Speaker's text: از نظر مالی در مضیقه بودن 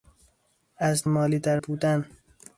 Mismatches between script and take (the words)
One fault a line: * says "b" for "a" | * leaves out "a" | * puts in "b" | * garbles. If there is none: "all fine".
* leaves out "نظر"
* leaves out "مضیقه"